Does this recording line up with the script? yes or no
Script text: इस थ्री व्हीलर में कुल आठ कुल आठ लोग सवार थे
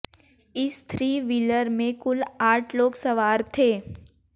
no